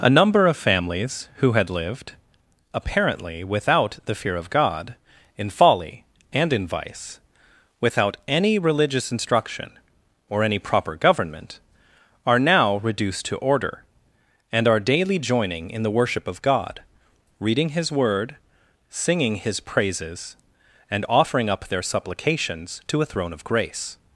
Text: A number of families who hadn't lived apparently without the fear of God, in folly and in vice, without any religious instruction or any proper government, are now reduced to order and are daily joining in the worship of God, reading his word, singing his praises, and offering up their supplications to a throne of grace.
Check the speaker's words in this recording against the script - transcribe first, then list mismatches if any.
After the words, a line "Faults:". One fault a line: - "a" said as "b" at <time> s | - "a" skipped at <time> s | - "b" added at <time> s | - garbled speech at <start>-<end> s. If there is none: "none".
A number of families who had lived apparently without the fear of God, in folly and in vice, without any religious instruction or any proper government, are now reduced to order and are daily joining in the worship of God, reading his word, singing his praises, and offering up their supplications to a throne of grace.
Faults:
- "hadn't" said as "had" at 1.5 s